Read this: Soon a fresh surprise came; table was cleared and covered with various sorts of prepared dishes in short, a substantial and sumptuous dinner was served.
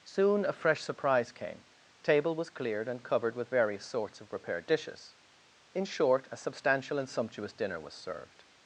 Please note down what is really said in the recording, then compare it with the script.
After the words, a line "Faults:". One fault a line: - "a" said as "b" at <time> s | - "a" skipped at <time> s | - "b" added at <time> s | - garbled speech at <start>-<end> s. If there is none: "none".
Soon a fresh surprise came; table was cleared and covered with various sorts of prepared dishes in short, a substantial and sumptuous dinner was served.
Faults:
none